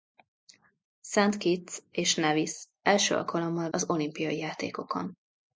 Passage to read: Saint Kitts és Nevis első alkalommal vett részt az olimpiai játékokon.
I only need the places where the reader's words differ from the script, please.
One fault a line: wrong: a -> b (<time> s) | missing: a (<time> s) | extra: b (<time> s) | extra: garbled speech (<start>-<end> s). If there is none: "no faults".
missing: vett részt (3.7 s)